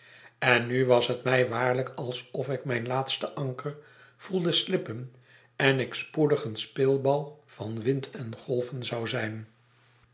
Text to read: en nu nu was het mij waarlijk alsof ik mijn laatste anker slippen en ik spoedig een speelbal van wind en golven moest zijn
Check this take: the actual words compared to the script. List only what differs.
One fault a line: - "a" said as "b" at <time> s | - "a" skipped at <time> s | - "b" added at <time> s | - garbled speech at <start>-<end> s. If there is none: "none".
- "nu" skipped at 0.8 s
- "voelde" added at 4.2 s
- "moest" said as "zou" at 8.8 s